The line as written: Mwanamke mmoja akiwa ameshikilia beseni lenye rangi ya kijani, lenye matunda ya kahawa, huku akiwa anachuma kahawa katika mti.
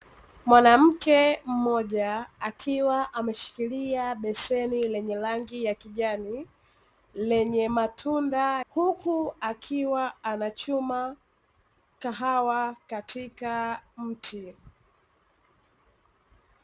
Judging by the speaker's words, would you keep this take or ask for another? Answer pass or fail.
fail